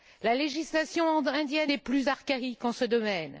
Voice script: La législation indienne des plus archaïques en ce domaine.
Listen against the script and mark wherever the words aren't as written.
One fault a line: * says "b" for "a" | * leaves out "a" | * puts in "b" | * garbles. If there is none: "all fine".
all fine